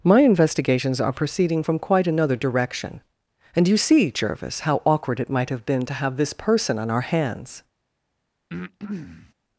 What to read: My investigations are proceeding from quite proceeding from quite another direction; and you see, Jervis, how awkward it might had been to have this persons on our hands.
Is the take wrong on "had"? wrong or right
wrong